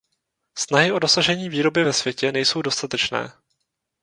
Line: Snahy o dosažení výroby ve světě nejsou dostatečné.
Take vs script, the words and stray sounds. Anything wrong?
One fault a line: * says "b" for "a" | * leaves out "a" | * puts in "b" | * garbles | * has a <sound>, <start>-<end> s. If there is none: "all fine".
all fine